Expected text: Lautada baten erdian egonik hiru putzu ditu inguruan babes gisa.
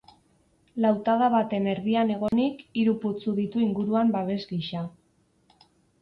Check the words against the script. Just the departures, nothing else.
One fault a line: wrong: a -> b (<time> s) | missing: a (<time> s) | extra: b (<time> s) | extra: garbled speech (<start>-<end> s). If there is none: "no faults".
no faults